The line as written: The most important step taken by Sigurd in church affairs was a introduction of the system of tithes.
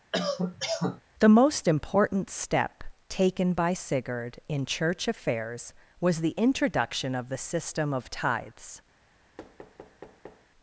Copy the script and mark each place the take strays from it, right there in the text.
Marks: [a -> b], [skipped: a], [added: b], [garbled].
The most important step taken by Sigurd in church affairs was [a -> the] introduction of the system of tithes.